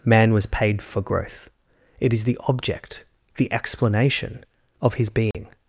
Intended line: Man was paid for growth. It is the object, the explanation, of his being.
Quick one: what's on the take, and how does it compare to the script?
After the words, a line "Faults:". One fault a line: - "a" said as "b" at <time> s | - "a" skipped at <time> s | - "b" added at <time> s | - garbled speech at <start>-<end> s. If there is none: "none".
Man was paid for growth. It is the object, the explanation, of his being.
Faults:
none